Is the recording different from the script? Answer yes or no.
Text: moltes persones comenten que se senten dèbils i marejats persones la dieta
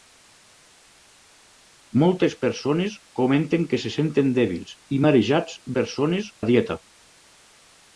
no